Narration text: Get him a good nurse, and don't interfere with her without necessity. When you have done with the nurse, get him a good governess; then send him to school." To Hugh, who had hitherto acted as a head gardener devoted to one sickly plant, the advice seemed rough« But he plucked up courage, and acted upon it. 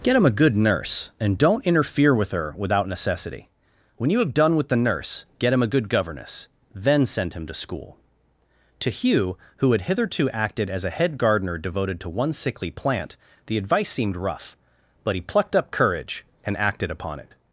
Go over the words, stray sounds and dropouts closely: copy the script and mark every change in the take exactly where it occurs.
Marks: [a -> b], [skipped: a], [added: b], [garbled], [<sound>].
Get him a good nurse, and don't interfere with her without necessity. When you have done with the nurse, get him a good governess; then send him to school." To Hugh, who had hitherto acted as a head gardener devoted to one sickly plant, the advice seemed rough« But he plucked up courage, and acted upon it.